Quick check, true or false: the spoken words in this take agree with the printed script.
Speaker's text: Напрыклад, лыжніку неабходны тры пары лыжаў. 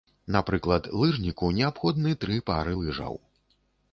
true